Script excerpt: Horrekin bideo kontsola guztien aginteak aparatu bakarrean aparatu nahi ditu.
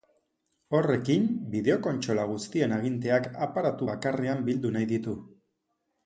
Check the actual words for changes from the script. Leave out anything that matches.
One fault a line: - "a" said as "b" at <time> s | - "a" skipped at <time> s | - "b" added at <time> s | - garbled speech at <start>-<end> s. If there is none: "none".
- "aparatu" said as "bildu" at 4.5 s